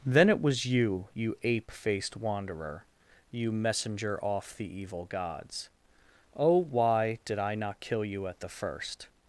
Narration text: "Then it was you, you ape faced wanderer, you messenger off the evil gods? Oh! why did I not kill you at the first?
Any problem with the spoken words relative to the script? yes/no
no